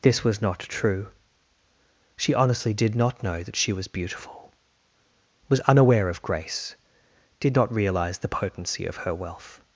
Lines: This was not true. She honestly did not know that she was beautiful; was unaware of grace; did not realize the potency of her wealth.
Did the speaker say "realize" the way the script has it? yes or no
yes